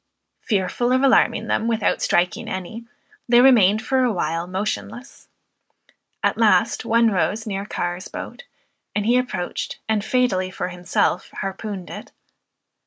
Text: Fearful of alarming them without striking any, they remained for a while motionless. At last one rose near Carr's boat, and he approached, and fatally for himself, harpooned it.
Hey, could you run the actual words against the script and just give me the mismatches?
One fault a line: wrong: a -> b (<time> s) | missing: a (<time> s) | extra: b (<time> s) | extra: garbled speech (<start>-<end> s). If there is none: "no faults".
no faults